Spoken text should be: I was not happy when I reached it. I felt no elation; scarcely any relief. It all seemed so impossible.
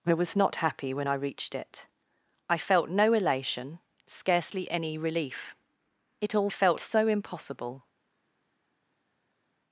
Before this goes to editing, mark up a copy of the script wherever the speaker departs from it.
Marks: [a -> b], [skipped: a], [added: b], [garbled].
I was not happy when I reached it. I felt no elation; scarcely any relief. It all [seemed -> felt] so impossible.